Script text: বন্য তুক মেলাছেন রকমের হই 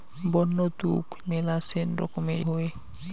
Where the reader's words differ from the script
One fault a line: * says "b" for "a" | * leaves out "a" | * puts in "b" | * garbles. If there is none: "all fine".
all fine